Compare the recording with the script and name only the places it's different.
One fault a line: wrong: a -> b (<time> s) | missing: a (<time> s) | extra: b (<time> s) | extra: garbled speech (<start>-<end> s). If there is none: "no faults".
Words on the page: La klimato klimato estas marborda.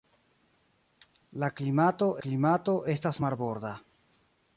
no faults